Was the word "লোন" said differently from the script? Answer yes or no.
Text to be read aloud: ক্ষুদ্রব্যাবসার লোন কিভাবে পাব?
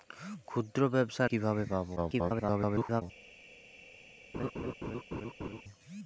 yes